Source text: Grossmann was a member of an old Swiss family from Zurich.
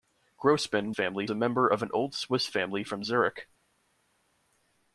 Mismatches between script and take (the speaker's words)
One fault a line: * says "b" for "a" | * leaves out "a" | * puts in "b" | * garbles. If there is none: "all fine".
* says "family" for "was"